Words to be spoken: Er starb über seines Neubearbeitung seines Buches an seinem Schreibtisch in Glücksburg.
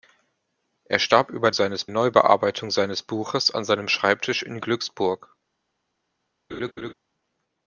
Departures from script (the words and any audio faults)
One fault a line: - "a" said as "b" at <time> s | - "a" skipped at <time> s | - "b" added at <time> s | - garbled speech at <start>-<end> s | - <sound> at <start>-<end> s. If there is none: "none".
- laugh at 6.5-6.9 s